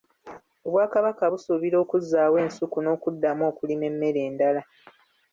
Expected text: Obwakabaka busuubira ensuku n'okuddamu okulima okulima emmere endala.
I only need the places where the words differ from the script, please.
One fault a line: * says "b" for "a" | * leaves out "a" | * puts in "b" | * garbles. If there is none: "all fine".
* puts in "okuzzaawo"
* leaves out "okulima"